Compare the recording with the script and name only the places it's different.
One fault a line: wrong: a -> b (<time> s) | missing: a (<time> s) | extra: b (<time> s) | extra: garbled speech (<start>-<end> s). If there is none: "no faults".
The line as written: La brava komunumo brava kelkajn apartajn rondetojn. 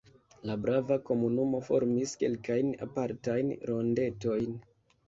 wrong: brava -> formis (1.7 s)